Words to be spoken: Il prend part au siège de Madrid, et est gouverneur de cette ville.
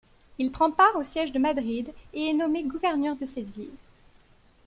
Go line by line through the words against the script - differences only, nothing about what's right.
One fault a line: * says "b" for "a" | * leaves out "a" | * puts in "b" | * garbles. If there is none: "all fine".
* puts in "nommé"